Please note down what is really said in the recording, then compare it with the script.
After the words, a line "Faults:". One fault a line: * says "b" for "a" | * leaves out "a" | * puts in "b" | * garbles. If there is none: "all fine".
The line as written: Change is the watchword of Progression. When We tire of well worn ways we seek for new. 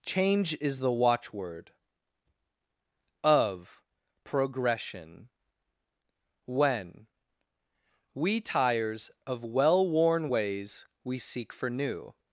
Change is the watchword of Progression. When We tires of well worn ways we seek for new.
Faults:
* says "tires" for "tire"